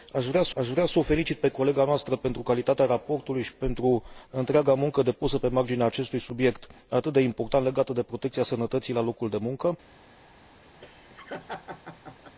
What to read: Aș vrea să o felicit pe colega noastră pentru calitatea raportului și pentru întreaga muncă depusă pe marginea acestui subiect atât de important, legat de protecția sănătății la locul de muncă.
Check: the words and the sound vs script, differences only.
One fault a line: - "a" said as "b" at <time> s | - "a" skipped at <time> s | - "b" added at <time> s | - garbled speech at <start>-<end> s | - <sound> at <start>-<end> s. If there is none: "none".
- "aș vrea să" added at 0.6 s
- laugh at 10.8-12.4 s